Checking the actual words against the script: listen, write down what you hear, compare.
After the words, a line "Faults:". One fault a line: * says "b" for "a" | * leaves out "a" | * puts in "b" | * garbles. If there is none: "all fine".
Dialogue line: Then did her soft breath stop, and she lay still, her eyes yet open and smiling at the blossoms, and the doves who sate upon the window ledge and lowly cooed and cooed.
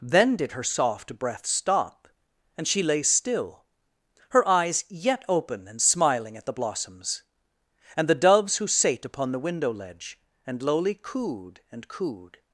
Then did her soft breath stop, and she lay still, her eyes yet open and smiling at the blossoms, and the doves who sate upon the window ledge and lowly cooed and cooed.
Faults:
all fine